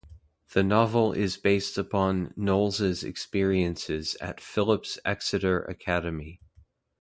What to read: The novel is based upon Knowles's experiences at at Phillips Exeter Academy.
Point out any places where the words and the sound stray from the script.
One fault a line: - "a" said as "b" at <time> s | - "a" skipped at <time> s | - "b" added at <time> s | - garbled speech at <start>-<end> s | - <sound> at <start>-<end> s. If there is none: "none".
- "at" skipped at 4.4 s